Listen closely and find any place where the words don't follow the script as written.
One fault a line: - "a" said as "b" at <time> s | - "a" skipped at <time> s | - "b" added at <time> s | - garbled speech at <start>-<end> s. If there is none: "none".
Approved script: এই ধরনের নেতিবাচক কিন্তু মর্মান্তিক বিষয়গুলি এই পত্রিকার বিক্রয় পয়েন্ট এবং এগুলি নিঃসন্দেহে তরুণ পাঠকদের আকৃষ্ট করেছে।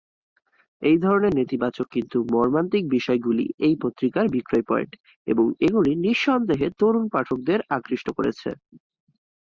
none